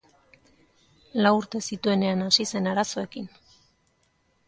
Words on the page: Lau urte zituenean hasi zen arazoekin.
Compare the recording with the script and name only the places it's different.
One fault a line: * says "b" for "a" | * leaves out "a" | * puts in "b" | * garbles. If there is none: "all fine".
all fine